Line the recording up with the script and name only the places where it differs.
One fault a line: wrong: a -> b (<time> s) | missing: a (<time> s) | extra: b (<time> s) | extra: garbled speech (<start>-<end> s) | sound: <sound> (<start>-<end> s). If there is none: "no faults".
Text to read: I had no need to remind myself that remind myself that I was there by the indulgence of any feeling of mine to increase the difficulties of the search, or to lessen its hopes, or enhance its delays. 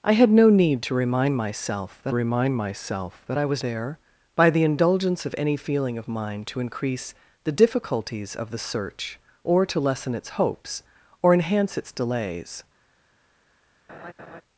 sound: laugh (13.9-14.4 s)